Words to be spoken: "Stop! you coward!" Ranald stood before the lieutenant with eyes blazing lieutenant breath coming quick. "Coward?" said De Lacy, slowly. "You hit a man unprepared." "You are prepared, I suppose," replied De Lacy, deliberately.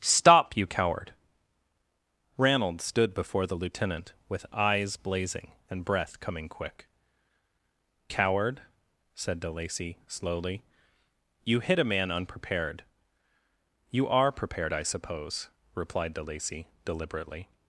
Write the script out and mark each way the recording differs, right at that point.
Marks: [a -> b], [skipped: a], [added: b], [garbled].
"Stop! you coward!" Ranald stood before the lieutenant with eyes blazing [lieutenant -> and] breath coming quick. "Coward?" said De Lacy, slowly. "You hit a man unprepared." "You are prepared, I suppose," replied De Lacy, deliberately.